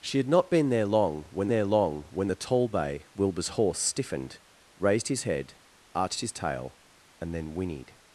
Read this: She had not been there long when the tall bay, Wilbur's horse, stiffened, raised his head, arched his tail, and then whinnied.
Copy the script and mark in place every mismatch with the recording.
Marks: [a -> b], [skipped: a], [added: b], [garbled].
She had not been there long when [added: there long when] the tall bay, Wilbur's horse, stiffened, raised his head, arched his tail, and then whinnied.